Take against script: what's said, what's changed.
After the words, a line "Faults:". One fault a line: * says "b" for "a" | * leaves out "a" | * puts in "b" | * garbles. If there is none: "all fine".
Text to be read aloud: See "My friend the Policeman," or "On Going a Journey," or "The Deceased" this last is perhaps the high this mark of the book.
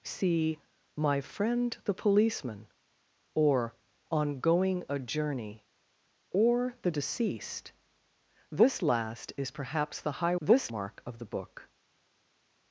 See "My friend the Policeman," or "On Going a Journey," or "The Deceased" this last is perhaps the high this mark of the book.
Faults:
all fine